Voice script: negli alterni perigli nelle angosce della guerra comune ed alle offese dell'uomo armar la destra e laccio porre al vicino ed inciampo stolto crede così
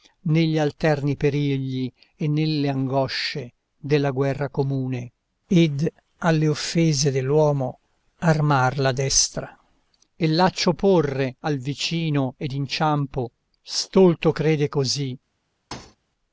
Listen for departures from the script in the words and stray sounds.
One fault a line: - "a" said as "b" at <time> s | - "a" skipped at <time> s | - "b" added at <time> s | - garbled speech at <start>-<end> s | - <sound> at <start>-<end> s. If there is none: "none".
- "e" added at 2.1 s
- thud at 15.7-16.0 s